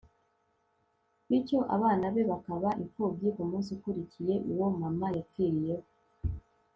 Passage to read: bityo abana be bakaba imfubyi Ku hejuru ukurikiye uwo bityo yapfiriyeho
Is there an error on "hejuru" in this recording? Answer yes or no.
yes